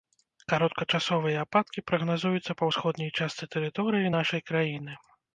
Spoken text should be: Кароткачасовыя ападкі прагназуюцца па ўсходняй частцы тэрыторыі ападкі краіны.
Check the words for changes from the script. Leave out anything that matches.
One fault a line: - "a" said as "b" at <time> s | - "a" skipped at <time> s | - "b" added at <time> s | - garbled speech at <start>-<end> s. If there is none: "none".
- "ападкі" said as "нашай" at 4.2 s